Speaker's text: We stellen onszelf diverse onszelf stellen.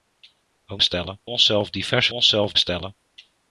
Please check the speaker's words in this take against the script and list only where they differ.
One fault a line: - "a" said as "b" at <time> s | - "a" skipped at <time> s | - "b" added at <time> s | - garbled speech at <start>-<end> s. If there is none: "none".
none